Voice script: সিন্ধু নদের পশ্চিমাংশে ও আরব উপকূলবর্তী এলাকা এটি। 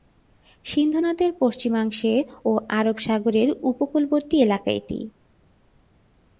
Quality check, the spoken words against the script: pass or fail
fail